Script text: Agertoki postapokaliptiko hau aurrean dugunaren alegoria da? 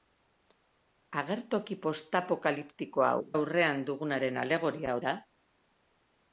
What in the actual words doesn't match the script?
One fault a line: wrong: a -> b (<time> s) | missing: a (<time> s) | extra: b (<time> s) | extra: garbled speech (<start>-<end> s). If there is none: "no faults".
no faults